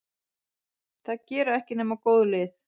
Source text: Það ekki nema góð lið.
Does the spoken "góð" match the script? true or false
true